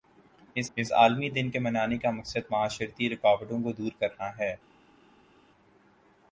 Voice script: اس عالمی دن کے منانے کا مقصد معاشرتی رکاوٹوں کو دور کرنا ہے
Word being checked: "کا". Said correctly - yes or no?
yes